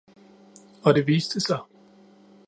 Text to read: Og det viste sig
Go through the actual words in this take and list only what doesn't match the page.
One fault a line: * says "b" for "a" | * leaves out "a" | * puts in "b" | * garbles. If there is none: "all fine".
all fine